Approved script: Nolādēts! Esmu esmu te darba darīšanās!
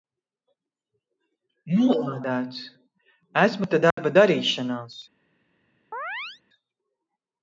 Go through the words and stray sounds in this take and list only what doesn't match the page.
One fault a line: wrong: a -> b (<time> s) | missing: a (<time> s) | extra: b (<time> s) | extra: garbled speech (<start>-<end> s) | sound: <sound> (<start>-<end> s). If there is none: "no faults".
missing: esmu (3.7 s)
sound: dropout (3.9-4.0 s)
sound: chirp (5.9-6.4 s)